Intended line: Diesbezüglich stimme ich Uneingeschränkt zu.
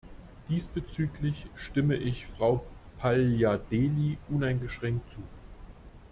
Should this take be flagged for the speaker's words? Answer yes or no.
yes